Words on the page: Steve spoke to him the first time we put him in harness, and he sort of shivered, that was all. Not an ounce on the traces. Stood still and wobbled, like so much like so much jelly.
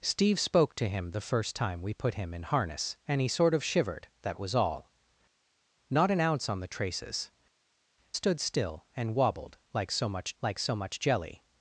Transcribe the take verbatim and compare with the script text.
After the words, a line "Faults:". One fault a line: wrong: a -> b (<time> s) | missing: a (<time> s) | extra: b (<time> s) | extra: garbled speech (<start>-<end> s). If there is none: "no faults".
Steve spoke to him the first time we put him in harness, and he sort of shivered, that was all. Not an ounce on the traces. Stood still and wobbled, like so much like so much jelly.
Faults:
no faults